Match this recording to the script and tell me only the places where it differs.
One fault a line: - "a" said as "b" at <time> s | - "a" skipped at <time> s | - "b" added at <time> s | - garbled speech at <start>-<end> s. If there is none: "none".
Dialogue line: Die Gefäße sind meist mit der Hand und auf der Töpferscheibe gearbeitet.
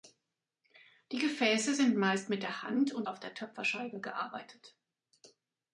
none